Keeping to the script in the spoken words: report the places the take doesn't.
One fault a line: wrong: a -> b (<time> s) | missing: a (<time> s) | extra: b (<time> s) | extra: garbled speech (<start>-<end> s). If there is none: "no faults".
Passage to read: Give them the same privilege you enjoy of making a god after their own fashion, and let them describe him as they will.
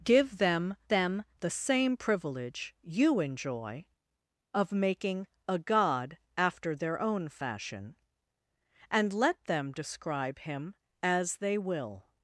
extra: them (0.9 s)